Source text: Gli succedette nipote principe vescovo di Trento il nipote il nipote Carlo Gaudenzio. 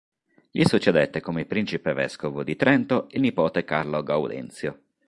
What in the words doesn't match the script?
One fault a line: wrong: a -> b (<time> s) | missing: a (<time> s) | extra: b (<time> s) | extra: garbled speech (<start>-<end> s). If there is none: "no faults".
wrong: nipote -> come (1.2 s)
missing: il nipote (3.6 s)